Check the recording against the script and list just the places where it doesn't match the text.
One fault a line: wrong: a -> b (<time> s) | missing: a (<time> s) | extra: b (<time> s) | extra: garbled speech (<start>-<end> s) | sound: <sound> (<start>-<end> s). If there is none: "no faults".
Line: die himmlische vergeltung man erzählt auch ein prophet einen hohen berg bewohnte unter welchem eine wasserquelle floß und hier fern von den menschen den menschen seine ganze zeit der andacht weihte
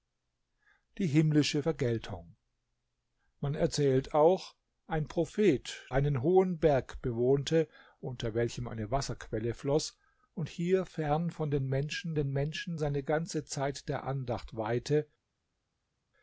no faults